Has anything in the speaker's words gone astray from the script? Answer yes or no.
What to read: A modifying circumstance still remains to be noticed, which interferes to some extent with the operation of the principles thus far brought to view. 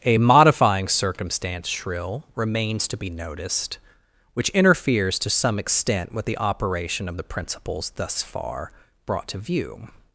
yes